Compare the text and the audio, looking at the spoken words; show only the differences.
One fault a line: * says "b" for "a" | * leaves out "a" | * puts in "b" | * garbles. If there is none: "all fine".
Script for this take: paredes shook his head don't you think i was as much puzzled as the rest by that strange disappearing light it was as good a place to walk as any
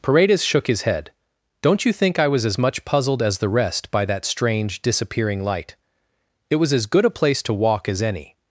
all fine